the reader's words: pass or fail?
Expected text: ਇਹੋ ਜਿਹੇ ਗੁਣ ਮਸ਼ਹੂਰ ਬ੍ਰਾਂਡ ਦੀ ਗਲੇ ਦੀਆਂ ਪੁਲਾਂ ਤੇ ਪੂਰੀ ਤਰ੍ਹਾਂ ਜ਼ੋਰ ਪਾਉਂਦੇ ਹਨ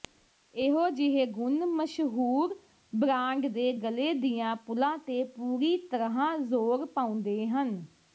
fail